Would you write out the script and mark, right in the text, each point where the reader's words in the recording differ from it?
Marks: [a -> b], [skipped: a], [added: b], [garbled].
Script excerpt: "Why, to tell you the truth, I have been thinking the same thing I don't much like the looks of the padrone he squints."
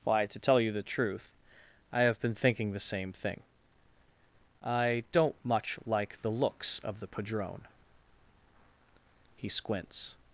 "Why, to tell you the truth, I have been thinking the same thing I don't much like the looks of the padrone he squints."